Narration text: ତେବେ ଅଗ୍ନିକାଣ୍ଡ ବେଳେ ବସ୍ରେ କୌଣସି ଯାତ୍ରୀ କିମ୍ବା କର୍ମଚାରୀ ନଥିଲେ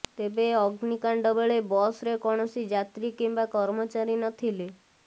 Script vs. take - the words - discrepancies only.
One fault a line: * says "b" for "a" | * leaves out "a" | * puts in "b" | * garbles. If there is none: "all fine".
all fine